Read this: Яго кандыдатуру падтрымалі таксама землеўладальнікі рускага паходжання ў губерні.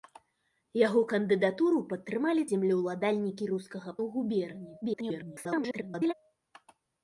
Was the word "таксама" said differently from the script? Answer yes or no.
yes